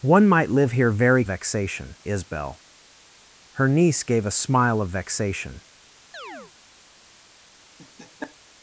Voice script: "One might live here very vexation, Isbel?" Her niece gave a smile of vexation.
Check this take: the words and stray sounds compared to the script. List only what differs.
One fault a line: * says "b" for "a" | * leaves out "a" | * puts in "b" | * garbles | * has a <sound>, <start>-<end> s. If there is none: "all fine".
* has a chirp, 6.1-6.5 s
* has a laugh, 7.8-8.4 s